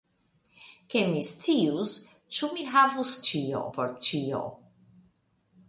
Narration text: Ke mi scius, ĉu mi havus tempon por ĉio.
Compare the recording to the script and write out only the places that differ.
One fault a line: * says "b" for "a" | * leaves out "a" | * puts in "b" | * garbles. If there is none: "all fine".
* says "ĉio" for "tempon"